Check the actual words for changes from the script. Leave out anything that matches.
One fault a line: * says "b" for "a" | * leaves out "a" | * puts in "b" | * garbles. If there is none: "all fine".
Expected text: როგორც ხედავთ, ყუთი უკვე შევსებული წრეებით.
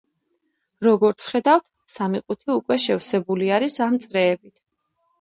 * puts in "სამი"
* puts in "არის ამ"